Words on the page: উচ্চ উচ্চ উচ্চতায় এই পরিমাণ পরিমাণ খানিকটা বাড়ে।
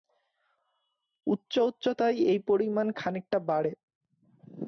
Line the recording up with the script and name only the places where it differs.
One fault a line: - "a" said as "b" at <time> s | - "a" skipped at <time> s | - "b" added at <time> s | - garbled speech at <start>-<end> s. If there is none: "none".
- "উচ্চ" skipped at 1.5 s
- "পরিমাণ" skipped at 2.9 s